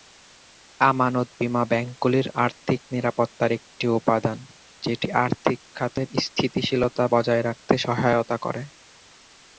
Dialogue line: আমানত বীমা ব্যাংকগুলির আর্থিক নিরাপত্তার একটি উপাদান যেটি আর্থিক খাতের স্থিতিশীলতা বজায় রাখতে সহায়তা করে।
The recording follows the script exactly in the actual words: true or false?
true